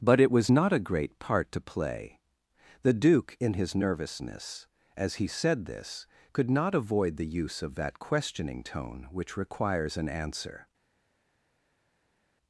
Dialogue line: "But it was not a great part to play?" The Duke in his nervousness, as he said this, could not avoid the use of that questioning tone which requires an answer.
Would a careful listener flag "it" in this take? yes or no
no